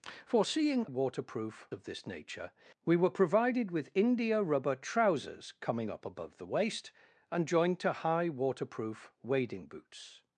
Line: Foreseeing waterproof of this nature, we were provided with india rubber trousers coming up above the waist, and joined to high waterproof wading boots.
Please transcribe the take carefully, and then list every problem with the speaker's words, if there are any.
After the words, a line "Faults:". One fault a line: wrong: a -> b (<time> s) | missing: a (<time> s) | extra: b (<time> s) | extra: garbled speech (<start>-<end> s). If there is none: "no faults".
Foreseeing waterproof of this nature, we were provided with india rubber trousers coming up above the waist, and joined to high waterproof wading boots.
Faults:
no faults